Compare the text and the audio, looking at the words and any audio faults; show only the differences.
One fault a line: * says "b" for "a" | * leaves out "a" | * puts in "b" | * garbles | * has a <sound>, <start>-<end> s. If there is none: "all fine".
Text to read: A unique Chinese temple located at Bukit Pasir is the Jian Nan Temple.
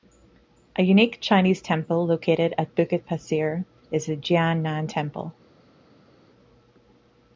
all fine